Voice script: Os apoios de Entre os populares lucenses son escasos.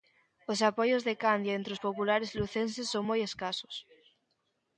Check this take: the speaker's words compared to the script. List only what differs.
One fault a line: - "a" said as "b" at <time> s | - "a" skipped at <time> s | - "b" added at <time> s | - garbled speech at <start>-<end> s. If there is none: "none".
- "Candia" added at 1.2 s
- "moi" added at 3.1 s